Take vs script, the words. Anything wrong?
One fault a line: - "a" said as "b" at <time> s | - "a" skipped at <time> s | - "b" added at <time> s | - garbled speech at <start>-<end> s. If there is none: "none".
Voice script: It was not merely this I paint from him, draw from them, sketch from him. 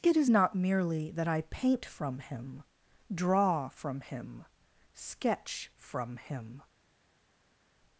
- "was" said as "is" at 0.2 s
- "this" said as "that" at 1.1 s
- "them" said as "him" at 4.0 s